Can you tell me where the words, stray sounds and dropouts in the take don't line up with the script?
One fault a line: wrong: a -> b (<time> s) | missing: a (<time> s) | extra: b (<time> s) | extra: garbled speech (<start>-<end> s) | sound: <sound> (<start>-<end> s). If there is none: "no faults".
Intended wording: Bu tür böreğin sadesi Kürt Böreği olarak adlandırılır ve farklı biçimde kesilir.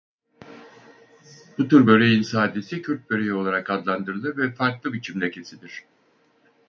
no faults